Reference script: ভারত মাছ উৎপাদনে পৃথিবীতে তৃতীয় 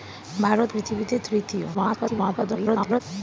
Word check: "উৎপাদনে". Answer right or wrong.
wrong